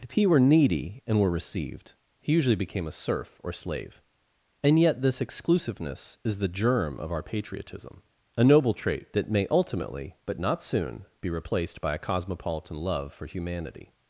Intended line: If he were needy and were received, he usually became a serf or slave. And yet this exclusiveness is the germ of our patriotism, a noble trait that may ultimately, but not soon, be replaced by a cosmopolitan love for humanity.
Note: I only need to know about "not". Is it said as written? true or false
true